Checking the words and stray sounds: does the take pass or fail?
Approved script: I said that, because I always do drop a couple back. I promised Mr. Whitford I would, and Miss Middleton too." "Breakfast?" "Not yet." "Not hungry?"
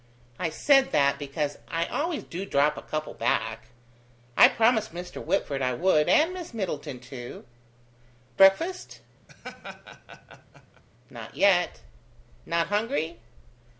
fail